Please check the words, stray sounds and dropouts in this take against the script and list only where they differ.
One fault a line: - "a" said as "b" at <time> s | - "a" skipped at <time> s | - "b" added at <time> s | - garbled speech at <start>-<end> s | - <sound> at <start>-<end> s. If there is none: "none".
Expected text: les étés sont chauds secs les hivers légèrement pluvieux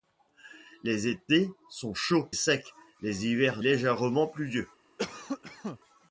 - cough at 5.0-5.8 s